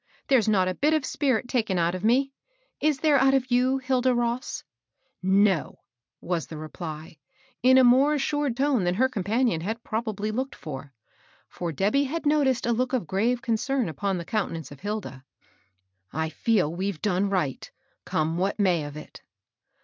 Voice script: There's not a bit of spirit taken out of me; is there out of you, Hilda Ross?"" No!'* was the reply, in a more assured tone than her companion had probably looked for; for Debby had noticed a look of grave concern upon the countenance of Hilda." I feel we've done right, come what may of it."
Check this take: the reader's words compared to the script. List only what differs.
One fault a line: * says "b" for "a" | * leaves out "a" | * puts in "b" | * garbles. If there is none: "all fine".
all fine